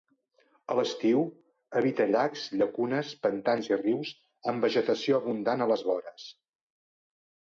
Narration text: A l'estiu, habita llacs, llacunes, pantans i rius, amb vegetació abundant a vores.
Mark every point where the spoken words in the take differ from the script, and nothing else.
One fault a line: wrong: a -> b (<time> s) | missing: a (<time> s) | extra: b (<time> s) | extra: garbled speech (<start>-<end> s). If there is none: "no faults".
extra: les (5.7 s)